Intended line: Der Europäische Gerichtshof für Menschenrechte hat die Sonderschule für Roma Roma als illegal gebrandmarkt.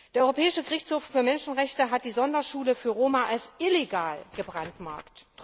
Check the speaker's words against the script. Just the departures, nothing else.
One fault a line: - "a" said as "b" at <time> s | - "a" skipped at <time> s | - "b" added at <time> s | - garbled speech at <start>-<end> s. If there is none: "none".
- "Roma" skipped at 3.3 s